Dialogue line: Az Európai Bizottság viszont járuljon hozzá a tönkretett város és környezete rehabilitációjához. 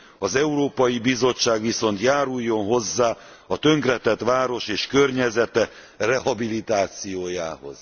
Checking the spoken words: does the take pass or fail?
pass